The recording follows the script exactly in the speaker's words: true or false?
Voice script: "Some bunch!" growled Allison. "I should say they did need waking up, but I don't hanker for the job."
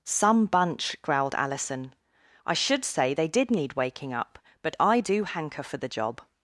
false